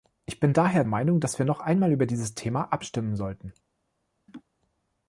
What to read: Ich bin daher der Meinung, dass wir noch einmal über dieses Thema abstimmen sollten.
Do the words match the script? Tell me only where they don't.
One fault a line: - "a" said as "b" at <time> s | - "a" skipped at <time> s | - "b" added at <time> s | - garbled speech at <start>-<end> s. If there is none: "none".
- "der" skipped at 0.8 s